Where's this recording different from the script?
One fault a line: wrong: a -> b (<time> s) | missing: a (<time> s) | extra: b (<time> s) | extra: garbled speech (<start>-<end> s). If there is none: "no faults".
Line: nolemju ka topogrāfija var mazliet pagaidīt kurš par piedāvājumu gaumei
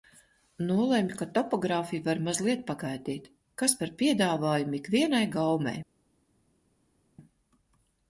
wrong: kurš -> kas (3.6 s)
extra: ikvienai (4.8 s)